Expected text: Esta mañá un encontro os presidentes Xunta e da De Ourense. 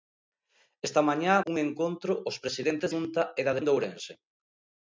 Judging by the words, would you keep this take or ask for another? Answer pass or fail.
pass